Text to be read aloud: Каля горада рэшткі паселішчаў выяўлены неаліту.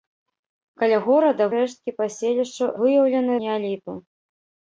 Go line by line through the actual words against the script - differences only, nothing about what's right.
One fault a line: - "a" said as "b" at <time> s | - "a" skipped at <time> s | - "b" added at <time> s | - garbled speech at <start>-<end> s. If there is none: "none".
none